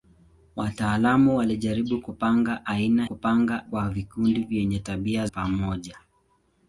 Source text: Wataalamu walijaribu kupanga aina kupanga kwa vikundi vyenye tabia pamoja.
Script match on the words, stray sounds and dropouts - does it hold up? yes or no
yes